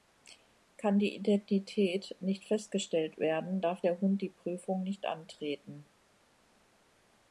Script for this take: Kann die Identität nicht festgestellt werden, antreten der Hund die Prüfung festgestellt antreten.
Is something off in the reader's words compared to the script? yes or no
yes